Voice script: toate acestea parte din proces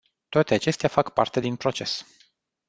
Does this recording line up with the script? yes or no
no